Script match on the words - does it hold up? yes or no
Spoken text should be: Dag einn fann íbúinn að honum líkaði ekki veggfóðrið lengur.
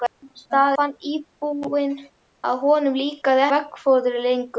no